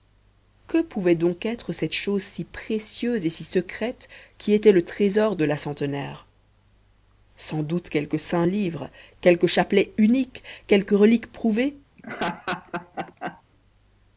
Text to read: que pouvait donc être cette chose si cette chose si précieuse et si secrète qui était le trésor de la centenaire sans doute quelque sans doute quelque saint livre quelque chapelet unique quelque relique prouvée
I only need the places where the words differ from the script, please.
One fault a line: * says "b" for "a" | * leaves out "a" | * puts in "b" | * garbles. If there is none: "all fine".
* leaves out "cette chose si"
* leaves out "sans doute quelque"